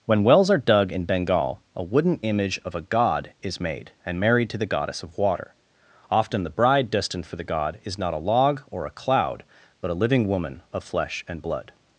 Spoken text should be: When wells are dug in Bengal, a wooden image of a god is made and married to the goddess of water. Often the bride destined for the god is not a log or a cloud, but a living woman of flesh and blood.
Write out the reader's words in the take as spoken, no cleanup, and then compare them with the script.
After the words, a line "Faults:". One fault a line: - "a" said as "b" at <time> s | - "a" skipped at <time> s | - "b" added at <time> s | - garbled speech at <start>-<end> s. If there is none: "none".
When wells are dug in Bengal, a wooden image of a god is made and married to the goddess of water. Often the bride destined for the god is not a log or a cloud, but a living woman of flesh and blood.
Faults:
none